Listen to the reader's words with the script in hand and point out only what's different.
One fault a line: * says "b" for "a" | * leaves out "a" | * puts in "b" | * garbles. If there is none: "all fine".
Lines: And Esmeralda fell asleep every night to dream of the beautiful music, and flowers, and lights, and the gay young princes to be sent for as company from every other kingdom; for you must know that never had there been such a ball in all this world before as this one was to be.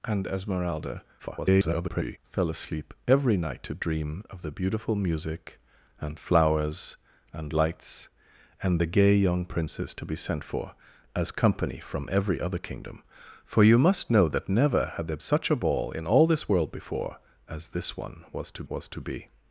* garbles
* leaves out "been"
* puts in "was to"